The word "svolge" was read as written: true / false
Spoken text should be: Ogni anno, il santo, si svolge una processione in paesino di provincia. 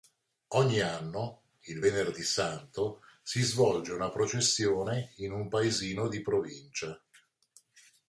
true